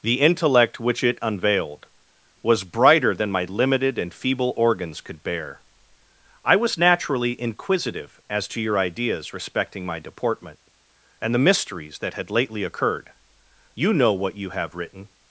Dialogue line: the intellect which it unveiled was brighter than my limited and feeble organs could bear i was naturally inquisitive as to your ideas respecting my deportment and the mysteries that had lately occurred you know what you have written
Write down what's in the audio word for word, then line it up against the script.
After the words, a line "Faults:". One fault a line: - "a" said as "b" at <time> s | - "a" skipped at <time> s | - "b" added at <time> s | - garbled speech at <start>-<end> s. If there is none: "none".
the intellect which it unveiled was brighter than my limited and feeble organs could bear i was naturally inquisitive as to your ideas respecting my deportment and the mysteries that had lately occurred you know what you have written
Faults:
none